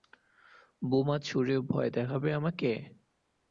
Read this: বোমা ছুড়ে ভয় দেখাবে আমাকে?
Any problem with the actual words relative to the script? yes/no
no